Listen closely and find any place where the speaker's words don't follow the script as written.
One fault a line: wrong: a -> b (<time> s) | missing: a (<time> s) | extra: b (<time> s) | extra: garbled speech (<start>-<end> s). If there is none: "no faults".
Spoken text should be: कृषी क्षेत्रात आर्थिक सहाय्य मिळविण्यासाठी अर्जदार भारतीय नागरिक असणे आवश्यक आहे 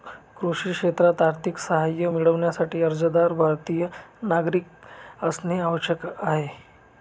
no faults